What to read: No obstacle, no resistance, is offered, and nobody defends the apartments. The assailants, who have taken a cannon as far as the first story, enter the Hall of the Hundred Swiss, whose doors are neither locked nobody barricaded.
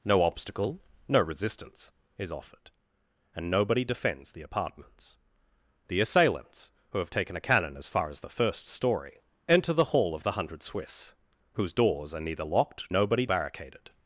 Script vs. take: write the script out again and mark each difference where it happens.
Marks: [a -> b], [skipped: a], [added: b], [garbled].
No obstacle, no resistance, is offered, and nobody defends the apartments. The assailants, who have taken a cannon as far as the first story, enter the Hall of the Hundred Swiss, whose doors are neither locked nobody barricaded.